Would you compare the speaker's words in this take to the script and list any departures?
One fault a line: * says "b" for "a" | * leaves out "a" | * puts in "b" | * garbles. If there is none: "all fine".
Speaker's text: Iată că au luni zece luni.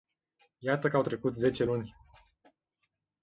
* says "trecut" for "luni"